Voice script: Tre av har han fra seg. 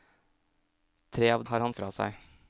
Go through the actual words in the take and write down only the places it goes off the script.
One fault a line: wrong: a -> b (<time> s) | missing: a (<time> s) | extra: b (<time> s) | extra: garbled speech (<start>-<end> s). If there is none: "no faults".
no faults